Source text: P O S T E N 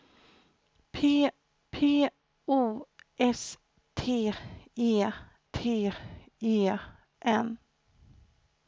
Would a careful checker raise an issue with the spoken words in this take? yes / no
yes